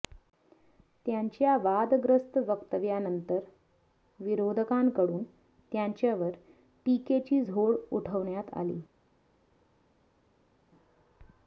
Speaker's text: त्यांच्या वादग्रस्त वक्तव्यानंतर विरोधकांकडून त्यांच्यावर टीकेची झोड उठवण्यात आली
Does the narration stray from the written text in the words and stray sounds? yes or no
no